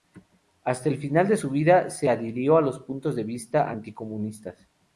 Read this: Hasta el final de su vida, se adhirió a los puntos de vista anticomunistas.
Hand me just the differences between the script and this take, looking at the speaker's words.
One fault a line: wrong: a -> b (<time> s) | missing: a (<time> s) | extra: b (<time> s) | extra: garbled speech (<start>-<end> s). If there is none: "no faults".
no faults